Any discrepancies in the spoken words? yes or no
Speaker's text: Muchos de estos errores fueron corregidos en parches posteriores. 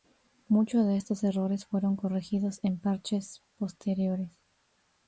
no